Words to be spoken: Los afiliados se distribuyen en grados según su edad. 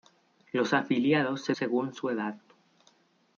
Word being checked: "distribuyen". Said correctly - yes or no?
no